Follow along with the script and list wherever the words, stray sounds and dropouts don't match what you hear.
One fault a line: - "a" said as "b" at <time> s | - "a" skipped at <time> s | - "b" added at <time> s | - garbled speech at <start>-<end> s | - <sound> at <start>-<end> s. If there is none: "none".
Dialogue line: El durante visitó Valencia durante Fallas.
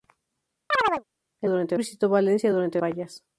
- chirp at 0.7-1.0 s